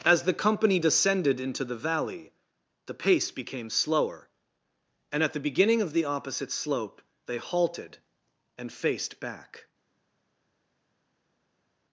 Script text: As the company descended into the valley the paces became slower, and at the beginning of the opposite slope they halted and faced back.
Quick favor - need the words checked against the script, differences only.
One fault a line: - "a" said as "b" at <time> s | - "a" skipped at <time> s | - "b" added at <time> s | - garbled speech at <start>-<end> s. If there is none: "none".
- "paces" said as "pace" at 2.9 s